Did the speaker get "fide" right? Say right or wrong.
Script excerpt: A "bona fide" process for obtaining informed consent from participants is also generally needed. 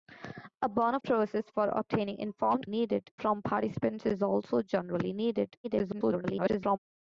wrong